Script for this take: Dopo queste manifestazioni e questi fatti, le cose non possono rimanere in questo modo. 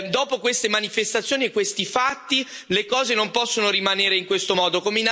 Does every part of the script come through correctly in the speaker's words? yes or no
yes